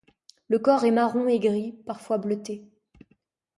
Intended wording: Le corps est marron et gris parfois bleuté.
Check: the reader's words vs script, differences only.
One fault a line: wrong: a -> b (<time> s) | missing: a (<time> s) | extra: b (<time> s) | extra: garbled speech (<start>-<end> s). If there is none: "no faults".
no faults